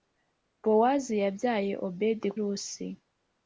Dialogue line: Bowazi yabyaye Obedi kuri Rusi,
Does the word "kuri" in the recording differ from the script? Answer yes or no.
yes